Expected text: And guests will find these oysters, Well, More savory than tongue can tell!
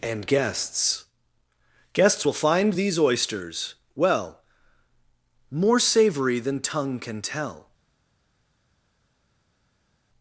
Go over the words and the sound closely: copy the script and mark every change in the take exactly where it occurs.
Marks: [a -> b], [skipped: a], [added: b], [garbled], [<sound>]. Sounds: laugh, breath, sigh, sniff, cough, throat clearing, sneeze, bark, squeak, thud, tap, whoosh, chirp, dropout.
And guests [added: guests] will find these oysters, Well, More savory than tongue can tell!